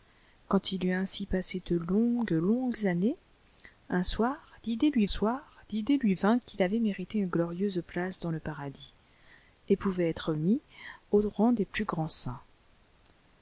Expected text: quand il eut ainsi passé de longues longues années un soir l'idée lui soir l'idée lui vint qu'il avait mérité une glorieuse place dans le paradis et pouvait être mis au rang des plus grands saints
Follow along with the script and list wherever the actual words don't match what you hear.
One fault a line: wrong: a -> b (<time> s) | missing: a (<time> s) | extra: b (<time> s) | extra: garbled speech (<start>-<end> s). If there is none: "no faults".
no faults